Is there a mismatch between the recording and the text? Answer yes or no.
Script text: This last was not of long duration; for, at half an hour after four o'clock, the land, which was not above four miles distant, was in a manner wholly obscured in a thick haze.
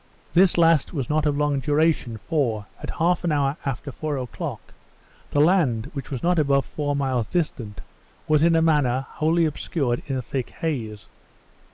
no